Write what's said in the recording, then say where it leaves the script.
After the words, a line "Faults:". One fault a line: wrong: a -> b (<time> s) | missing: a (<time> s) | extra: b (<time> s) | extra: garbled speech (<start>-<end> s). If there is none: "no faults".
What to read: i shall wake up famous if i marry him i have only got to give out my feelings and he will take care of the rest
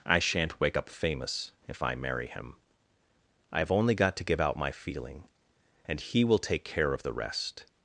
i shan't wake up famous if i marry him i have only got to give out my feeling and he will take care of the rest
Faults:
wrong: shall -> shan't (0.2 s)
wrong: feelings -> feeling (4.7 s)